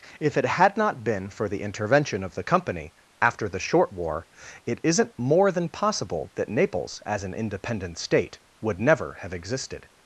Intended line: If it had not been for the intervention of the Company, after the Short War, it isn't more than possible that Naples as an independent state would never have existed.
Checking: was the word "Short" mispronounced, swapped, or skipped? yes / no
no